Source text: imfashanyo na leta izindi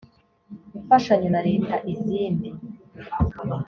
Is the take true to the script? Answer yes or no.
yes